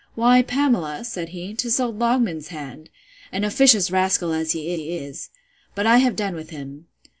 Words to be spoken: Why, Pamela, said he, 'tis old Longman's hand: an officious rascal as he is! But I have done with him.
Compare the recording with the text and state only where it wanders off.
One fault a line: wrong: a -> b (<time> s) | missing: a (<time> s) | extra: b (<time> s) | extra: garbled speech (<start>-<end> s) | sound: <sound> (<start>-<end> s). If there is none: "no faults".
extra: he (4.7 s)